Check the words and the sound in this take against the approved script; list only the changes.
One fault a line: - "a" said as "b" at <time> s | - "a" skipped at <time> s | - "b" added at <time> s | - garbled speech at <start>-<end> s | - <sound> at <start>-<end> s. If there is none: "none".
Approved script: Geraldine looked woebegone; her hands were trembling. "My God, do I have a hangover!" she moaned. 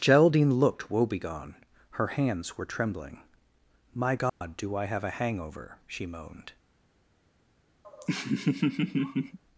- dropout at 4.3-4.4 s
- laugh at 7.8-9.4 s